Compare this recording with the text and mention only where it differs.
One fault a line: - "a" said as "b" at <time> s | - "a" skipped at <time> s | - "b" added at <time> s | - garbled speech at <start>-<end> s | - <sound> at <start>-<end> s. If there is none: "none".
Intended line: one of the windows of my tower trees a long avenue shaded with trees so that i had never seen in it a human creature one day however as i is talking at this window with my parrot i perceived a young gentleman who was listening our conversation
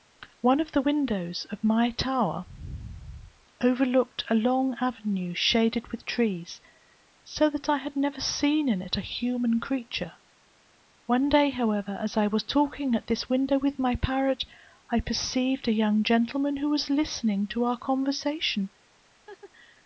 - "trees" said as "overlooked" at 3.6 s
- "is" said as "was" at 12.3 s
- "to" added at 17.5 s
- laugh at 19.3-19.5 s